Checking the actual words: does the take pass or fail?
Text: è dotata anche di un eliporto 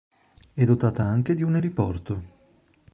pass